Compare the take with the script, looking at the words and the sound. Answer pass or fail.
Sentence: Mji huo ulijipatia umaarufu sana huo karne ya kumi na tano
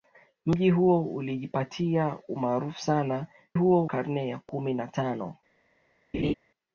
fail